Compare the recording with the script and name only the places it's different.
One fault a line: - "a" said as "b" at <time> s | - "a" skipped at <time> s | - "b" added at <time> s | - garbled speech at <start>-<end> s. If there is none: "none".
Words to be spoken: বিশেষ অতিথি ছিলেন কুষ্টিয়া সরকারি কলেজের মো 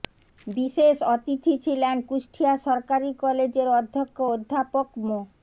- "অধ্যক্ষ অধ্যাপক" added at 3.8 s